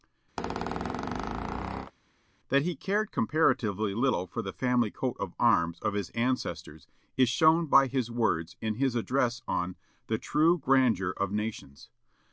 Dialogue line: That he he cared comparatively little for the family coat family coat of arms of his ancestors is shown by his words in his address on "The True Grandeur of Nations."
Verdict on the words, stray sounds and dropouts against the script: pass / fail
fail